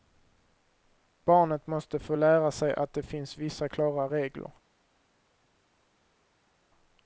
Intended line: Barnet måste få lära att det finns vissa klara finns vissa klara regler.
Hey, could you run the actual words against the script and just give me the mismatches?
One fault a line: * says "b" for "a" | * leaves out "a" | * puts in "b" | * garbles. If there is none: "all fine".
* puts in "sig"
* leaves out "finns vissa klara"